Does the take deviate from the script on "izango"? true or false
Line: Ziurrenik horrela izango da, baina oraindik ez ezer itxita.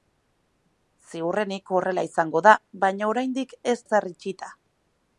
false